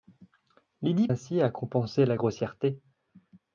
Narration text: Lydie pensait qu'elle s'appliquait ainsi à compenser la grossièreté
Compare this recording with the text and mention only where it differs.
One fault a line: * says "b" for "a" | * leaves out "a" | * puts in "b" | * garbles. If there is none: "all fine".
* leaves out "pensait qu'elle s'appliquait"